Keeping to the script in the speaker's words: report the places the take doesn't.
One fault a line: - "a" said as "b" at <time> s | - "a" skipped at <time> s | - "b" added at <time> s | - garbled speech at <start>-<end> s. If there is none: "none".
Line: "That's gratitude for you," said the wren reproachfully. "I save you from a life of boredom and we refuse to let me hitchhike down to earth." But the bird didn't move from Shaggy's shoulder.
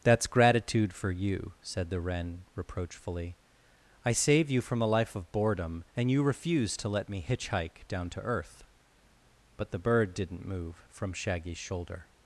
- "we" said as "you" at 6.1 s